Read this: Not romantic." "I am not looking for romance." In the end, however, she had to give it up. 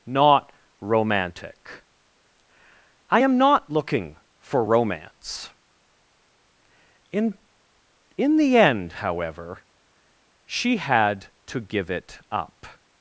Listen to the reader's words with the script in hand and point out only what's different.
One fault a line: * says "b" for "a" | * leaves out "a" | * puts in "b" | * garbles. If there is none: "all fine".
* puts in "In"